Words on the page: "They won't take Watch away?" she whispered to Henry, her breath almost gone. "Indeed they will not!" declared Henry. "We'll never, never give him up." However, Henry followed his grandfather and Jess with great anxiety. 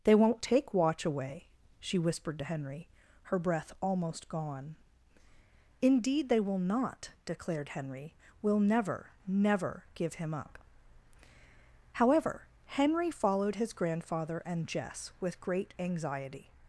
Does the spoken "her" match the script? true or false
true